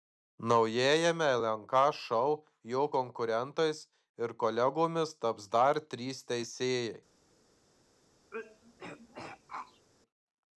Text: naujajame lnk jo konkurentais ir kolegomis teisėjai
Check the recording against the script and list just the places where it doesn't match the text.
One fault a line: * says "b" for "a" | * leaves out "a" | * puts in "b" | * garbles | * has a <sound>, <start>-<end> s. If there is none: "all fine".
* puts in "šou"
* puts in "taps dar trys"
* has a throat clearing, 8.3-9.9 s